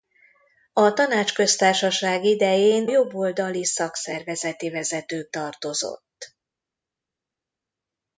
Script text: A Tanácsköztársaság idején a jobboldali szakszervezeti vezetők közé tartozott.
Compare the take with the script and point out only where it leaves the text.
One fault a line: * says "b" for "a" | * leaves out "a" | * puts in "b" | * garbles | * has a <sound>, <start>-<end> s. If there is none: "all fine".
* leaves out "a"
* leaves out "közé"